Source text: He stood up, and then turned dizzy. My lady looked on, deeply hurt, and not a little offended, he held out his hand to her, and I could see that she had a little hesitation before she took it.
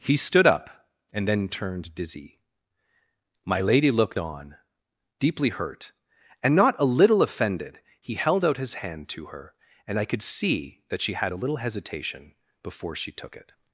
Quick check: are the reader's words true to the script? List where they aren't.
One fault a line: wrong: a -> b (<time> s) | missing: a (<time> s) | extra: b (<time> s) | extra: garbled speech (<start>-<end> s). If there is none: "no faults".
no faults